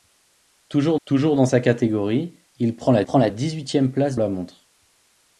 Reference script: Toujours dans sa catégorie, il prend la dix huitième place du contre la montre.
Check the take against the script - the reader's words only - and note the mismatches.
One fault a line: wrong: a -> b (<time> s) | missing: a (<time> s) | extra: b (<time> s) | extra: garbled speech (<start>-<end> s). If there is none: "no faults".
extra: toujours (1.0 s)
extra: prend la (3.0 s)
missing: du contre (4.1 s)